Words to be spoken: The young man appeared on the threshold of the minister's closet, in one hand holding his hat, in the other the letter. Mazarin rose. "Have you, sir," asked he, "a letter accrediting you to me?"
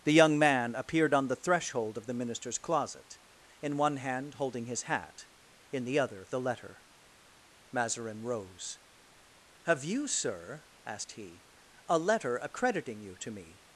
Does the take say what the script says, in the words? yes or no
yes